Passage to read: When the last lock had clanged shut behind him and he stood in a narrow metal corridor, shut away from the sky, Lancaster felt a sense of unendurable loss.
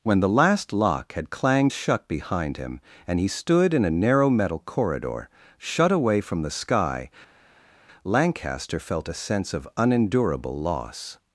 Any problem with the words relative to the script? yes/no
no